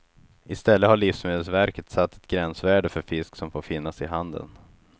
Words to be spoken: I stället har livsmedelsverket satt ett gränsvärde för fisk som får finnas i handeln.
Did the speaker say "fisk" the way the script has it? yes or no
yes